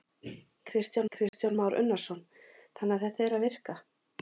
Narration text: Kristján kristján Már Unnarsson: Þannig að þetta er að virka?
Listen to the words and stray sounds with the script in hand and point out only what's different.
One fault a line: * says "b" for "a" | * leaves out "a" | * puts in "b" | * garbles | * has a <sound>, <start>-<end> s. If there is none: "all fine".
* has a dropout, 1.3-1.3 s